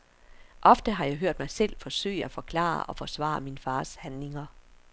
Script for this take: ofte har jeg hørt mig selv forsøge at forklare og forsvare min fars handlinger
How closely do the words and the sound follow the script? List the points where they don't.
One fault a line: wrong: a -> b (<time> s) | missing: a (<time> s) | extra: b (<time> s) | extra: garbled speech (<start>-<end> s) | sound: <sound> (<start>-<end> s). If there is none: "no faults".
no faults